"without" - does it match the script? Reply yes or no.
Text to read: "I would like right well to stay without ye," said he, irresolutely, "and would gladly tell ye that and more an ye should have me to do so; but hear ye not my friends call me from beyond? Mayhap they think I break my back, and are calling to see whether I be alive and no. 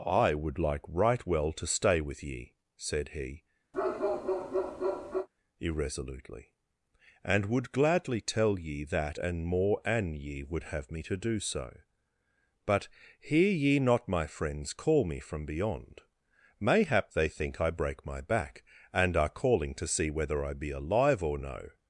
no